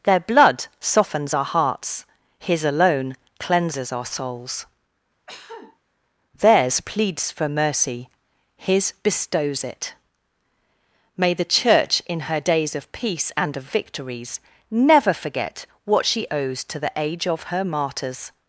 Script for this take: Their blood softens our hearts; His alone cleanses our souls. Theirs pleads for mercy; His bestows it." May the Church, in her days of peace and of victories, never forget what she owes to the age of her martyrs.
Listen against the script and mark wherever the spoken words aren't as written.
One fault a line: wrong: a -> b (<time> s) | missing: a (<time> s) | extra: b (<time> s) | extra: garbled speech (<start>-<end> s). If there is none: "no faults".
no faults